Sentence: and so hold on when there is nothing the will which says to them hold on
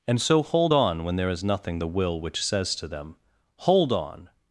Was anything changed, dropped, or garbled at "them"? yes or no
no